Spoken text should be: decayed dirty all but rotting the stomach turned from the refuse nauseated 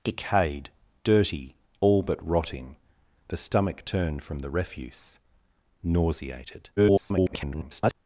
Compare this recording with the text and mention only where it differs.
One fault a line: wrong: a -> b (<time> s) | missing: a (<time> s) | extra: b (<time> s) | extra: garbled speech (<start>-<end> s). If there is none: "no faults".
extra: garbled speech (6.8-7.9 s)